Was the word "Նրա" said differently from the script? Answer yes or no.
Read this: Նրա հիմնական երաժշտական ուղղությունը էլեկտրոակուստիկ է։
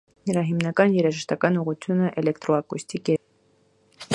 no